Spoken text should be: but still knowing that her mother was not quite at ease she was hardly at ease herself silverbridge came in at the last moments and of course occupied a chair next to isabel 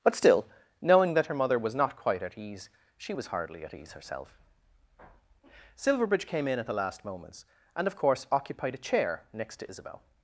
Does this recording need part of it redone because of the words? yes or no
no